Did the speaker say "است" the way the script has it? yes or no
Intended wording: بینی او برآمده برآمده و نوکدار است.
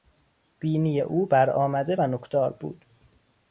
no